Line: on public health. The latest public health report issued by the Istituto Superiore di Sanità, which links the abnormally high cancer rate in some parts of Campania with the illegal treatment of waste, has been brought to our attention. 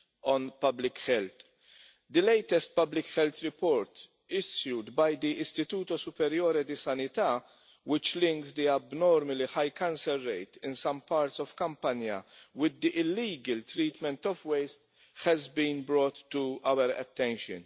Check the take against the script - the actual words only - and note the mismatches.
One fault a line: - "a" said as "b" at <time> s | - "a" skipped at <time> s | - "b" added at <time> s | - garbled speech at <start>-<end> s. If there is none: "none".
none